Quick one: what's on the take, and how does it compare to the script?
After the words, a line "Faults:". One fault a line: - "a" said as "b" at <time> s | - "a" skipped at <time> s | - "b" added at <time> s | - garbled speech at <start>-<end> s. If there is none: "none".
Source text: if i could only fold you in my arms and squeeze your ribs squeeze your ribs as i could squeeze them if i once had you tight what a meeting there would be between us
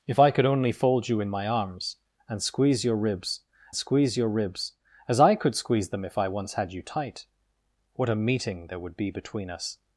if i could only fold you in my arms and squeeze your ribs squeeze your ribs as i could squeeze them if i once had you tight what a meeting there would be between us
Faults:
none